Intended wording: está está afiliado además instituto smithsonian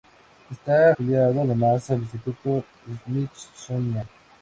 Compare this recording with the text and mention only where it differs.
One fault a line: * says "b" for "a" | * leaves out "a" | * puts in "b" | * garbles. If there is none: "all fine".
* leaves out "está"
* puts in "al"